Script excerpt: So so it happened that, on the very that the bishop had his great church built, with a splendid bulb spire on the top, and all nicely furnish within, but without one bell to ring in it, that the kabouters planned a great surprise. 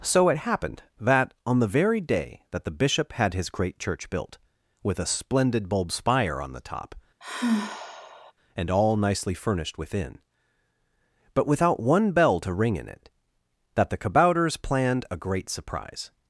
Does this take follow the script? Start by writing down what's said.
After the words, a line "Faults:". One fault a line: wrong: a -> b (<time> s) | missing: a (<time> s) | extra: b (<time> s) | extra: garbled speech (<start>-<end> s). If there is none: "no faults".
So it happened that, on the very day that the bishop had his great church built, with a splendid bulb spire on the top, and all nicely furnished within, but without one bell to ring in it, that the kabouters planned a great surprise.
Faults:
missing: so (0.3 s)
extra: day (2.0 s)
wrong: furnish -> furnished (9.3 s)